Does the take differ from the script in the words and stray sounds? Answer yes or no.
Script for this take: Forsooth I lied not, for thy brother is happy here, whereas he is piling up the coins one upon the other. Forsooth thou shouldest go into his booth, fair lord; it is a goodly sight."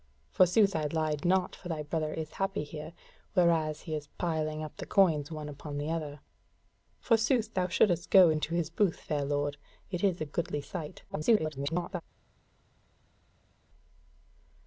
yes